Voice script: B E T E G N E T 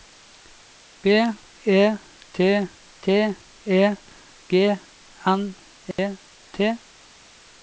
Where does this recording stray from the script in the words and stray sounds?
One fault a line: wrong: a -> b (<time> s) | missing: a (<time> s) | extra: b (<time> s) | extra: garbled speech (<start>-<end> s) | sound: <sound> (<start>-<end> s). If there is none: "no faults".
extra: T (3.0 s)
sound: dropout (5.9-6.0 s)